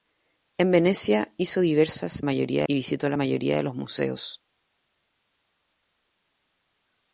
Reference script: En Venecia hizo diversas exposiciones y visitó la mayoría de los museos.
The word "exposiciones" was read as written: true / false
false